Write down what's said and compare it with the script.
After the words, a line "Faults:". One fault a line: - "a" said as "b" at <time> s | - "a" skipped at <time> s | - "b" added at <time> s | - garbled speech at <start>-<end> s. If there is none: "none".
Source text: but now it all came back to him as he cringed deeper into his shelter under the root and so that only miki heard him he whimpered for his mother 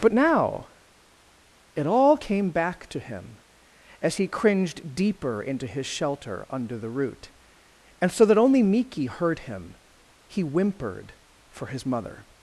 but now it all came back to him as he cringed deeper into his shelter under the root and so that only miki heard him he whimpered for his mother
Faults:
none